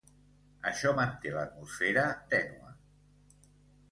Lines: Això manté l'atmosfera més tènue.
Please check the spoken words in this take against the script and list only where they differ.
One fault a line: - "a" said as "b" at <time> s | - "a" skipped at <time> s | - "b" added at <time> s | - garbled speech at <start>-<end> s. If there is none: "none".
- "més" skipped at 2.1 s